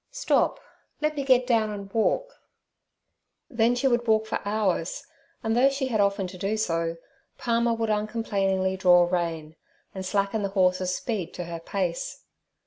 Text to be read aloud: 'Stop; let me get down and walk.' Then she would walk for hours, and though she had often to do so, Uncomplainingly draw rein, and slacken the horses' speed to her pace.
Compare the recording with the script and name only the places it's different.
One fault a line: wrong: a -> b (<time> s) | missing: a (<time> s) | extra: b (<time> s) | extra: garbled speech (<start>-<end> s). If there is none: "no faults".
extra: Palmer would (7.4 s)